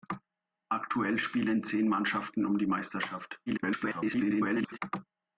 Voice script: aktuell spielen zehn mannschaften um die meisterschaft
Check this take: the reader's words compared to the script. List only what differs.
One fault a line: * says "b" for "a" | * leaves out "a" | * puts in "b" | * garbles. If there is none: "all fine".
* garbles